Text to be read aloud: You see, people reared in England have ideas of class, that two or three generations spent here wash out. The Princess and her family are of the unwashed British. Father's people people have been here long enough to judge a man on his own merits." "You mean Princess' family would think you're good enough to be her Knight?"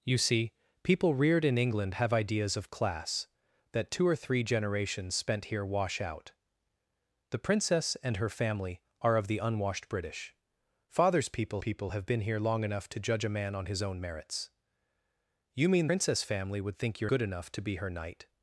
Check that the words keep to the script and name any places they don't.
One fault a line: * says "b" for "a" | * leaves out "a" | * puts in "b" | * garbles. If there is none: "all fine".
all fine